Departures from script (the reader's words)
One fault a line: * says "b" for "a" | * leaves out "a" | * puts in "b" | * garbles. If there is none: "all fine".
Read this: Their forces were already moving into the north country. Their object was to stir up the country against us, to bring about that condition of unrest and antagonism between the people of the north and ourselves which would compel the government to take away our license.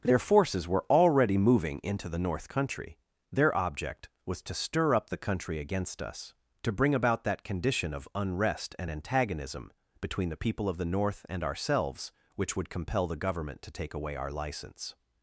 all fine